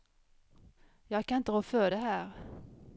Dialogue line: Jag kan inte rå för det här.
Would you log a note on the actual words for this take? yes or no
no